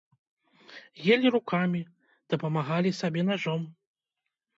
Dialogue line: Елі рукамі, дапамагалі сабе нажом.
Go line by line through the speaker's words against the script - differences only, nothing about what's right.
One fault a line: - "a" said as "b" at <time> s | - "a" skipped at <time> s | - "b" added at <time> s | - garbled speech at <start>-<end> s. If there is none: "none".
none